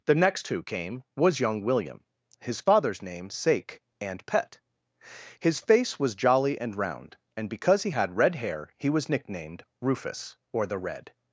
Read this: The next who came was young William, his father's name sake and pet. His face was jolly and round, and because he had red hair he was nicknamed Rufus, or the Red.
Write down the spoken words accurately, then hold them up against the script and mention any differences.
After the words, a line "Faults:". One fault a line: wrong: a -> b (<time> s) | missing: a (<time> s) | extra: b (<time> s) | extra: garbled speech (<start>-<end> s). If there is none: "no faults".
The next who came was young William, his father's name sake and pet. His face was jolly and round, and because he had red hair he was nicknamed Rufus, or the Red.
Faults:
no faults